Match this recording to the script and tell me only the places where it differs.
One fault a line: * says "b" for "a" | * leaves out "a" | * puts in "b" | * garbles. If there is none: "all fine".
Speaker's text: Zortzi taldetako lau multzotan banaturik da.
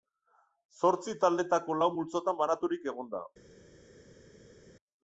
* puts in "egon"